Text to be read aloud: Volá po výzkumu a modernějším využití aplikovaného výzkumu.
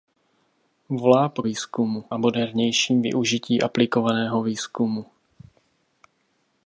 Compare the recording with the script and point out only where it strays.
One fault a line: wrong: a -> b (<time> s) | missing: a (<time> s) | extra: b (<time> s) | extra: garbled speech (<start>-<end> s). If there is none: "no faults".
no faults